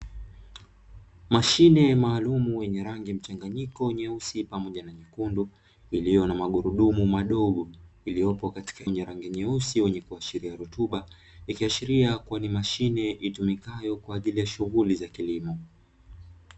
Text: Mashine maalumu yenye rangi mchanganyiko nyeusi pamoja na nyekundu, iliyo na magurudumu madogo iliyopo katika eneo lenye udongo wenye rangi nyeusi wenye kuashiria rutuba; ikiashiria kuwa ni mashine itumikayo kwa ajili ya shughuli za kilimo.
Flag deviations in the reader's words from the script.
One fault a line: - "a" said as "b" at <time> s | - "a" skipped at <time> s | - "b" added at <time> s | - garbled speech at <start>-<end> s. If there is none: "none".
- "eneo lenye udongo" skipped at 8.8 s